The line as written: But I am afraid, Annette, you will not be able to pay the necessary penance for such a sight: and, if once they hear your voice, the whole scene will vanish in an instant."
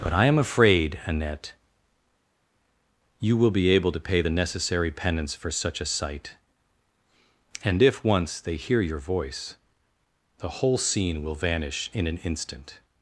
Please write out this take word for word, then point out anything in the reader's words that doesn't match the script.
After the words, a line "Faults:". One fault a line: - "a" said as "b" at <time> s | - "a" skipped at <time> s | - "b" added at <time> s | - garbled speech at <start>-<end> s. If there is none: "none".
But I am afraid, Annette, you will be able to pay the necessary penance for such a sight: and, if once they hear your voice, the whole scene will vanish in an instant."
Faults:
- "not" skipped at 3.5 s